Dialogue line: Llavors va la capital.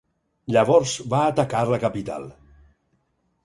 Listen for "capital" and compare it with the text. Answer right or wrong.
right